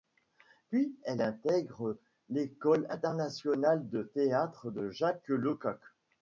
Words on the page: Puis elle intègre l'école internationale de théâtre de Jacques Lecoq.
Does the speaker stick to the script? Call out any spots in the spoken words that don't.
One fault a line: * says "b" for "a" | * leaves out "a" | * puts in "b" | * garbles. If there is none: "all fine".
all fine